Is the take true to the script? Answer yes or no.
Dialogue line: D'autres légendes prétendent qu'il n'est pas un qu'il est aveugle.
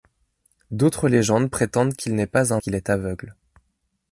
yes